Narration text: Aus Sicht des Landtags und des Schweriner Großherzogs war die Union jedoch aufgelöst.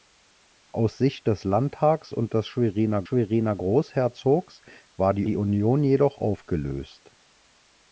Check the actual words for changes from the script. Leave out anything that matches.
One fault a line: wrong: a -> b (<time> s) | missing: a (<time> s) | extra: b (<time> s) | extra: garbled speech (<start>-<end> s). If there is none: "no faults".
extra: Schweriner (3.0 s)
extra: die (5.2 s)